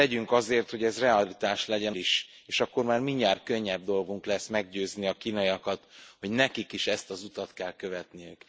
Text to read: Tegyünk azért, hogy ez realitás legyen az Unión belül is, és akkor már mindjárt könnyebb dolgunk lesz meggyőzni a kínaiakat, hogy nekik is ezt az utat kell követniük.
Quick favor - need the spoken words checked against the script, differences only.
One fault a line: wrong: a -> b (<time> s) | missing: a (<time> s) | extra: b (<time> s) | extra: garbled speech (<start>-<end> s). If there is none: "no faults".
missing: az Unión belül (1.9 s)